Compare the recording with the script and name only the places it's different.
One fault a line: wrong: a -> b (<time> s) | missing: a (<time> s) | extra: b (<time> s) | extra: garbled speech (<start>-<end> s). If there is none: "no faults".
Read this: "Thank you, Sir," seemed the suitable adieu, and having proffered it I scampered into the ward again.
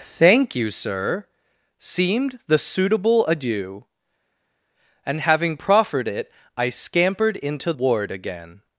missing: the (7.7 s)